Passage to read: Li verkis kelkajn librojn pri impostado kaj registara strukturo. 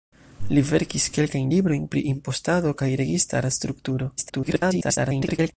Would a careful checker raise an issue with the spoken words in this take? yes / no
yes